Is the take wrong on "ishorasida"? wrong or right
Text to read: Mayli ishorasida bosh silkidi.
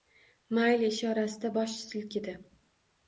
right